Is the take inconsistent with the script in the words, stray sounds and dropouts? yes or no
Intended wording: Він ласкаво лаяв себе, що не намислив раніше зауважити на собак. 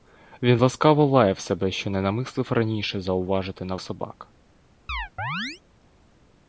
yes